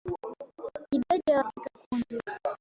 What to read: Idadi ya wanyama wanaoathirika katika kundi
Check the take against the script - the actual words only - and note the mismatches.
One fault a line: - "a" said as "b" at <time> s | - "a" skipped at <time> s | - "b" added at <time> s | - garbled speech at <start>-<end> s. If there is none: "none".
- "wanyama wanaoathirika" skipped at 1.4 s